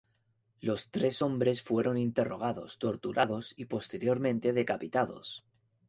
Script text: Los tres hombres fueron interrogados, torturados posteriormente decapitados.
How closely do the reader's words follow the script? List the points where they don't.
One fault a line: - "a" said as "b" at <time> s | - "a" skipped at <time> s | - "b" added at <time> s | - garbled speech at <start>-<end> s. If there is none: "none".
- "y" added at 3.6 s